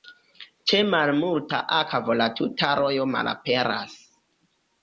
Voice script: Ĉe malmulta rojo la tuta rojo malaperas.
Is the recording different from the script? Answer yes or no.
yes